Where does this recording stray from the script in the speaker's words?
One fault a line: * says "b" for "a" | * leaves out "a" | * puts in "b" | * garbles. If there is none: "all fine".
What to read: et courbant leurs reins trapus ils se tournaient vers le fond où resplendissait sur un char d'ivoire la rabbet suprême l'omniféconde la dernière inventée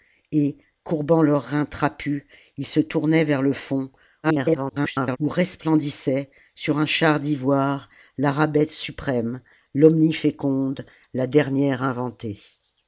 * garbles